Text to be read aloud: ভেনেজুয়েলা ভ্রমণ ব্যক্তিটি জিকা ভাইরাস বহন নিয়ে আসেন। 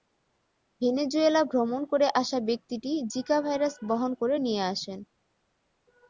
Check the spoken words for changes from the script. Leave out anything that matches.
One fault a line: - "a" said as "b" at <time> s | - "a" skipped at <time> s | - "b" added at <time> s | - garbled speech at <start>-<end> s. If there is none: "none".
- "করে আসা" added at 1.9 s
- "করে" added at 4.1 s